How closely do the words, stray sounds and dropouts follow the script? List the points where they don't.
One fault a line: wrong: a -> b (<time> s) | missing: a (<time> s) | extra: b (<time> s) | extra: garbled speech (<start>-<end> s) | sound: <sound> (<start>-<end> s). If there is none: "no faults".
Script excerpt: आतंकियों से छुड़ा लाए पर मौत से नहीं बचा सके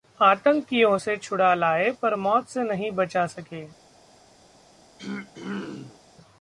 sound: throat clearing (5.0-6.0 s)